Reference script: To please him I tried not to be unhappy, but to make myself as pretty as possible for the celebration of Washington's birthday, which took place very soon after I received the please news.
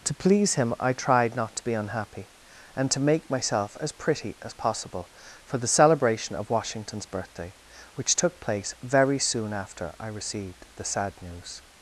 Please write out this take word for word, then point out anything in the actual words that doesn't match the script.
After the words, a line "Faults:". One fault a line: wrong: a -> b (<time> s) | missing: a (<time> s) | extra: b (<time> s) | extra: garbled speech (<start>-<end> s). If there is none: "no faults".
To please him I tried not to be unhappy, and to make myself as pretty as possible for the celebration of Washington's birthday, which took place very soon after I received the sad news.
Faults:
wrong: but -> and (2.8 s)
wrong: please -> sad (10.8 s)